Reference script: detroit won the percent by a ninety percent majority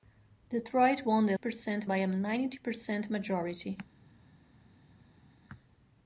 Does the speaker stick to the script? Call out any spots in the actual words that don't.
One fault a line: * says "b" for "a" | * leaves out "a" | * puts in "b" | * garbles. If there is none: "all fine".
all fine